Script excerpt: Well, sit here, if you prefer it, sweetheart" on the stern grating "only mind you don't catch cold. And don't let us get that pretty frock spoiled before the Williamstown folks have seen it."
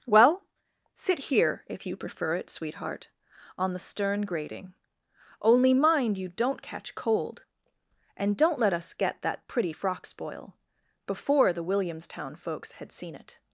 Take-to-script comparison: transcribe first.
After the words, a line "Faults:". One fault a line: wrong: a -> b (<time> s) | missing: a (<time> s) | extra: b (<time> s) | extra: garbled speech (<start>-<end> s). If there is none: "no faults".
Well, sit here, if you prefer it, sweetheart" on the stern grating "only mind you don't catch cold. And don't let us get that pretty frock spoil before the Williamstown folks had seen it."
Faults:
wrong: spoiled -> spoil (10.0 s)
wrong: have -> had (12.7 s)